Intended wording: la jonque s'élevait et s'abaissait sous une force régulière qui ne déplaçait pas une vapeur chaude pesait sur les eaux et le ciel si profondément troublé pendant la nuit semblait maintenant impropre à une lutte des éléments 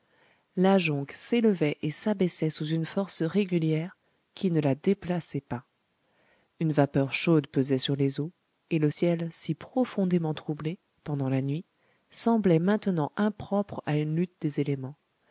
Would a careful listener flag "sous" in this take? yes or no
no